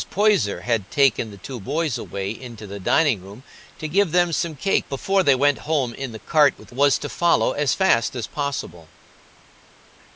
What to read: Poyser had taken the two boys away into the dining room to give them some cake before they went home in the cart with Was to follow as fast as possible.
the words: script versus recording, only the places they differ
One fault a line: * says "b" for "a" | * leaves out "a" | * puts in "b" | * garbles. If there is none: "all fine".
all fine